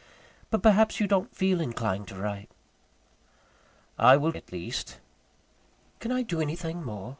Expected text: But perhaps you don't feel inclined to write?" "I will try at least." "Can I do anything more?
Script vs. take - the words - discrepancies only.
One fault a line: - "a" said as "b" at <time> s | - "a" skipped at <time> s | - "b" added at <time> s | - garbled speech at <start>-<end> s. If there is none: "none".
- "try" skipped at 4.3 s